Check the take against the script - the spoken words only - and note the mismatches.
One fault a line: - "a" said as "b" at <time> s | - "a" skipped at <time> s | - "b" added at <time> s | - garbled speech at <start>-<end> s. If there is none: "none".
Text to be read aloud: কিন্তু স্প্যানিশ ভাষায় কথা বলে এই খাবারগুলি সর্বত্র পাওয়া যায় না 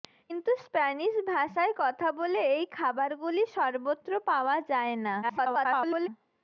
- garbled speech at 5.2-6.1 s